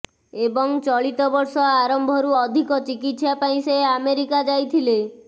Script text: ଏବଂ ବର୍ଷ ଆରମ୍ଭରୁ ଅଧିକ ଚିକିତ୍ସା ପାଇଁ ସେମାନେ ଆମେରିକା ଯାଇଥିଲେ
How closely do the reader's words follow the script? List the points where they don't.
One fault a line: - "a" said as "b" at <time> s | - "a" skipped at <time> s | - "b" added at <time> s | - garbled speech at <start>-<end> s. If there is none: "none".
- "ଚଳିତ" added at 0.8 s
- "ସେମାନେ" said as "ସେ" at 3.6 s